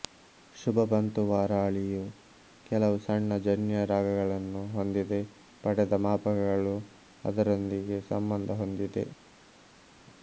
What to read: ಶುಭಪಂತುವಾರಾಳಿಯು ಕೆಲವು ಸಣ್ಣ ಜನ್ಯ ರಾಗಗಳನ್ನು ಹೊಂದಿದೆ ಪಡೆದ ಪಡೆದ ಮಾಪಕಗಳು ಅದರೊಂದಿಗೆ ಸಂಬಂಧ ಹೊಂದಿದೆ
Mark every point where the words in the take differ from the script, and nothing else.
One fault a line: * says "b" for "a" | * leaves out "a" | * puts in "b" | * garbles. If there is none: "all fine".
* leaves out "ಪಡೆದ"